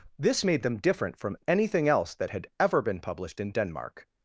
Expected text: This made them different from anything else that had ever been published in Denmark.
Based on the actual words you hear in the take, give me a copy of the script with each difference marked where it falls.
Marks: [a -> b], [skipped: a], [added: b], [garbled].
This made them different from anything else that had ever been published in Denmark.